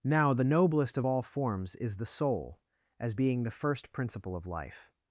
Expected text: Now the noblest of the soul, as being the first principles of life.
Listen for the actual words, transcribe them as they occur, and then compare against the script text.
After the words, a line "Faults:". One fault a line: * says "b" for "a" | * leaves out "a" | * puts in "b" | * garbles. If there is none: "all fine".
Now the noblest of all forms is the soul, as being the first principle of life.
Faults:
* puts in "all forms is"
* says "principle" for "principles"